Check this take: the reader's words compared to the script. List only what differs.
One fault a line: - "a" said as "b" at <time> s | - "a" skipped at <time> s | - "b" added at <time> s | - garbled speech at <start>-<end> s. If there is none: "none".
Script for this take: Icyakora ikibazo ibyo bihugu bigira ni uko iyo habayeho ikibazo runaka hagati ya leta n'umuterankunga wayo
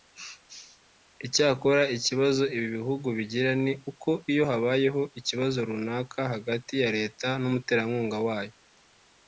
- "ibyo" said as "ibi" at 2.5 s